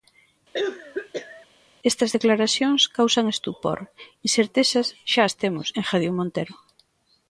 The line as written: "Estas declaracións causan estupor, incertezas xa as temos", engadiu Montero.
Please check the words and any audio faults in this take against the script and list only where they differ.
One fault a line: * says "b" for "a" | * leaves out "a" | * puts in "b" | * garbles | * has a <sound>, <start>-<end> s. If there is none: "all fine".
* has a cough, 0.5-1.5 s